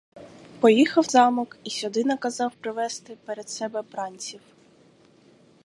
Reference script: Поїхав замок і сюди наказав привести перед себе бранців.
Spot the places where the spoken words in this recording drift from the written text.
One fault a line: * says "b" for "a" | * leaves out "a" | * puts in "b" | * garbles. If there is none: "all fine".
all fine